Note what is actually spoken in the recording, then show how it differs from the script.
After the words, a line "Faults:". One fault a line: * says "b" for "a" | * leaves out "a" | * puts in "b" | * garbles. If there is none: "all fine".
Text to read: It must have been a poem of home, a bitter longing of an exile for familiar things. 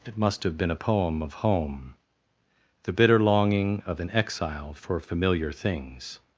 It must have been a poem of home, the bitter longing of an exile for familiar things.
Faults:
* says "the" for "a"